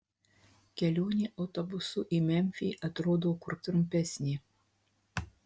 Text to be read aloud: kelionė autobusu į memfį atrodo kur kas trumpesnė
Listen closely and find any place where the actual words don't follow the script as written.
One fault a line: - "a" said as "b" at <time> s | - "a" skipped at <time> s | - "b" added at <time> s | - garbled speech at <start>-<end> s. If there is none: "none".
- "kas" skipped at 3.6 s